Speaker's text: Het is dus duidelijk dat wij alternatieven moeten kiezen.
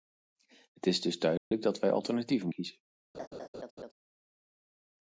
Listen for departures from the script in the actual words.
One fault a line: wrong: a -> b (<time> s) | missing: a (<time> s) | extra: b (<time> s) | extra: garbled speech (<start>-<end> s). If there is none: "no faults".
missing: moeten (2.5 s)